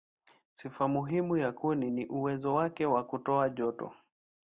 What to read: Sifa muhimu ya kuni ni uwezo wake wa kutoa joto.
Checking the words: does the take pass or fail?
pass